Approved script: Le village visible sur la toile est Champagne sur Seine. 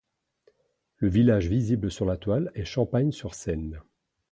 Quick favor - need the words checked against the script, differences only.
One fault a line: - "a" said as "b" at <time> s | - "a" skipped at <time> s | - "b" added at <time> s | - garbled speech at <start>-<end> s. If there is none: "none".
none